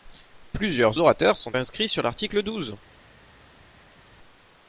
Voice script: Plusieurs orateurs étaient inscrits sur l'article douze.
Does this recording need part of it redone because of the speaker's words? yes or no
yes